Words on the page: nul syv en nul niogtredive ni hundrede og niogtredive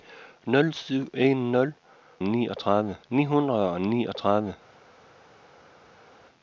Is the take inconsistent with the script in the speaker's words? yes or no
no